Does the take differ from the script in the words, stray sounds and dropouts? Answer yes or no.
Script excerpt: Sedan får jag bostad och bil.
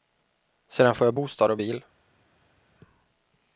no